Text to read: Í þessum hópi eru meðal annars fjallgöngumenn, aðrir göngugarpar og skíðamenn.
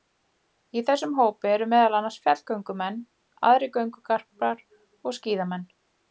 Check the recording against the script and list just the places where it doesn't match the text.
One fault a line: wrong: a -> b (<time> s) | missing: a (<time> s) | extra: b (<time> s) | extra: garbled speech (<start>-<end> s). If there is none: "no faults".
no faults